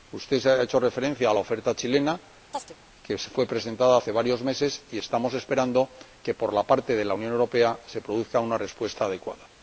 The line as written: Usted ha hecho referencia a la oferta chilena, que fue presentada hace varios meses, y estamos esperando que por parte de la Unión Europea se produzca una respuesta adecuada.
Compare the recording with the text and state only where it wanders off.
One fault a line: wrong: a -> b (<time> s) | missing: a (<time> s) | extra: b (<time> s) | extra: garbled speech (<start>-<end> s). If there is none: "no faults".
no faults